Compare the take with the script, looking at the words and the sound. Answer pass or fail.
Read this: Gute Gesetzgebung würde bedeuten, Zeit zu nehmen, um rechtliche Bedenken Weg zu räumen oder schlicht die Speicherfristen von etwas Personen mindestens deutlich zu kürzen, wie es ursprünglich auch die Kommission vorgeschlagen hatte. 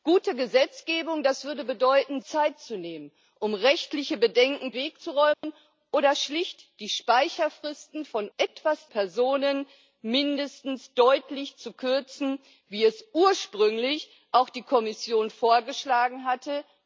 fail